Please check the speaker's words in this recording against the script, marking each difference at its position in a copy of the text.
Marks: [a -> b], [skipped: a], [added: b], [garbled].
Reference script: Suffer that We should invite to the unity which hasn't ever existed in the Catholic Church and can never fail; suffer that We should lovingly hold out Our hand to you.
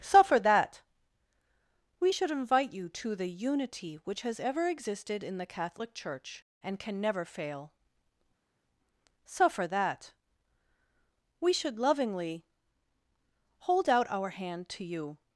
Suffer that We should invite [added: you] to the unity which [hasn't -> has] ever existed in the Catholic Church and can never fail; suffer that We should lovingly hold out Our hand to you.